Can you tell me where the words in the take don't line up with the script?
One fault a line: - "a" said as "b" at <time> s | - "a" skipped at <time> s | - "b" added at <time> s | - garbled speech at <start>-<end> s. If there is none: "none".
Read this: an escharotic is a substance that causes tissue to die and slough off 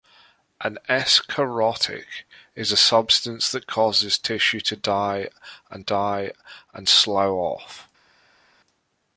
- "die and" added at 5.8 s